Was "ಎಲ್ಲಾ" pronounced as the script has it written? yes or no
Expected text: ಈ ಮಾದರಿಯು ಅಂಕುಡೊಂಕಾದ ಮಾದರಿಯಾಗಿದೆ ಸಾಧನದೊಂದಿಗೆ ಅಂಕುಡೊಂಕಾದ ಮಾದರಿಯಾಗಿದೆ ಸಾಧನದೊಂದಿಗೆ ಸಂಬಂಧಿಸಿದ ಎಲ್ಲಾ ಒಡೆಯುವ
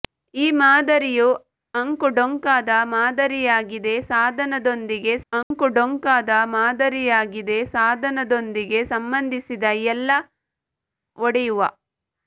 yes